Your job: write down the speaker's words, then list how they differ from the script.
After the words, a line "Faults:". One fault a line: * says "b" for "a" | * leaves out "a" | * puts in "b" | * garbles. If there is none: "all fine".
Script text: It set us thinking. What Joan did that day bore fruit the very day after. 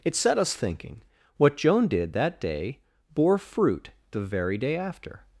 It set us thinking. What Joan did that day bore fruit the very day after.
Faults:
all fine